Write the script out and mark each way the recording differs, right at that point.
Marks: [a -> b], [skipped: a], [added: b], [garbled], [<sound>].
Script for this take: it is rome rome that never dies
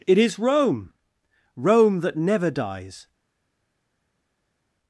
it is rome rome that never dies